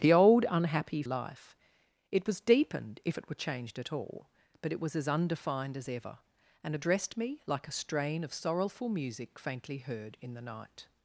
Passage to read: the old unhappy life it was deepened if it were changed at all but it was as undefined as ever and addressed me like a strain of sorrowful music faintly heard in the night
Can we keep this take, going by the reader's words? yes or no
yes